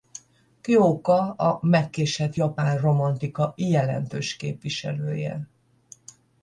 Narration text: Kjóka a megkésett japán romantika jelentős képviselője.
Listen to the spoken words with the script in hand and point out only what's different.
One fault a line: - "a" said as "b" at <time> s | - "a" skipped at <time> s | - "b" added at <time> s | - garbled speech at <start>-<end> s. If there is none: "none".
none